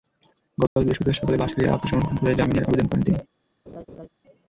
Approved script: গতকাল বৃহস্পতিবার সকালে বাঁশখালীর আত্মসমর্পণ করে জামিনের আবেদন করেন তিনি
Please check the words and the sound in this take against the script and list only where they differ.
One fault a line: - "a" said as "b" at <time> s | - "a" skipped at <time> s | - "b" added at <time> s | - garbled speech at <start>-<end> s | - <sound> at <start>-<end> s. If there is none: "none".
- dropout at 0.7-0.8 s
- laugh at 3.7-4.1 s